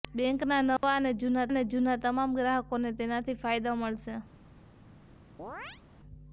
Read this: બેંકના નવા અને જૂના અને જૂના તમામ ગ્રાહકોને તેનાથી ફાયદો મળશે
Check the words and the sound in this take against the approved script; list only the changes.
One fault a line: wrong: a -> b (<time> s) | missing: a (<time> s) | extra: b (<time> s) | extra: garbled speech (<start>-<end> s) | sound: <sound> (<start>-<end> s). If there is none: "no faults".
sound: dropout (0.8-0.8 s)
sound: chirp (5.4-5.8 s)